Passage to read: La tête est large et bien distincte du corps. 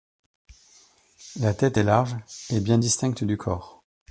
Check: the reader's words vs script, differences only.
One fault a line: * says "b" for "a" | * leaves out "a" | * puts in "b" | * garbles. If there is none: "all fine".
all fine